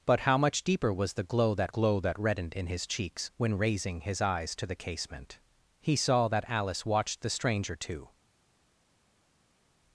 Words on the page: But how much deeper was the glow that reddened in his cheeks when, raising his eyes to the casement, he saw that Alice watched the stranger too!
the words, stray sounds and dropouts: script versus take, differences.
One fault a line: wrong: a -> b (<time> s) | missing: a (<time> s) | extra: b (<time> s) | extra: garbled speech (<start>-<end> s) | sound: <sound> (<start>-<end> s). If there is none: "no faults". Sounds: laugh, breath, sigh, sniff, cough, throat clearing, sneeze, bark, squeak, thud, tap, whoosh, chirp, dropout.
extra: glow that (1.7 s)